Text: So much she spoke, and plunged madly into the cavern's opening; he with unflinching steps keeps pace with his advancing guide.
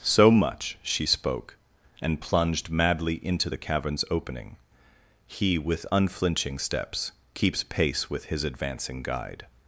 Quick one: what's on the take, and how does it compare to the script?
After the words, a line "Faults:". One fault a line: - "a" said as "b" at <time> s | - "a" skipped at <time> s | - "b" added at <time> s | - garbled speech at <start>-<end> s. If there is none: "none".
So much she spoke, and plunged madly into the cavern's opening; he with unflinching steps keeps pace with his advancing guide.
Faults:
none